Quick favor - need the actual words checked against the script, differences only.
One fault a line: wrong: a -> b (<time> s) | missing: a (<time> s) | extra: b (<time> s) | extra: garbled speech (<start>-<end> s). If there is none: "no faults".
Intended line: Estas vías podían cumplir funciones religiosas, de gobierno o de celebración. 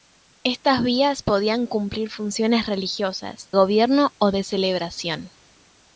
missing: de (3.5 s)